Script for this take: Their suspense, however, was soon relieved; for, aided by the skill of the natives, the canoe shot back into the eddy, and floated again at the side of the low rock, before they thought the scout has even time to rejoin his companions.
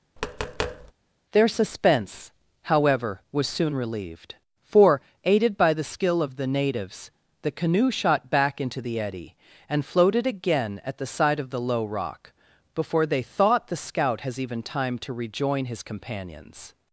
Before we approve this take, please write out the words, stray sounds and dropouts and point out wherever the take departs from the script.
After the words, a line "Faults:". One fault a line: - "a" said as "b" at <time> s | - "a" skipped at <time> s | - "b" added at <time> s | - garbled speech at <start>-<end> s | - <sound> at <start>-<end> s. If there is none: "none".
Their suspense, however, was soon relieved; for, aided by the skill of the natives, the canoe shot back into the eddy, and floated again at the side of the low rock, before they thought the scout has even time to rejoin his companions.
Faults:
- tap at 0.2-0.9 s